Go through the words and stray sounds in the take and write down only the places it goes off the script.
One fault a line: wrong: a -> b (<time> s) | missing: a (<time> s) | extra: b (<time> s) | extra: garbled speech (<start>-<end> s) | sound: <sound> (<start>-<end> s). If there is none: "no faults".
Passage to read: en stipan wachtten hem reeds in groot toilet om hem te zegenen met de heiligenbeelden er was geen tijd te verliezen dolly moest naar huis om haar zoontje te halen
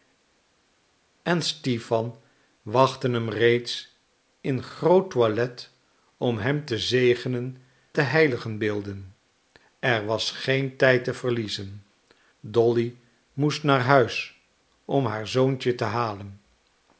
missing: met (7.6 s)